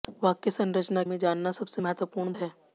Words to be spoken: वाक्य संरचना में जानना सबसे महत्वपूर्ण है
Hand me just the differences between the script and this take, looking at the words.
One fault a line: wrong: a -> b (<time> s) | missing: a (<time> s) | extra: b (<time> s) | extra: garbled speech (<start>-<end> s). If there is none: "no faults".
no faults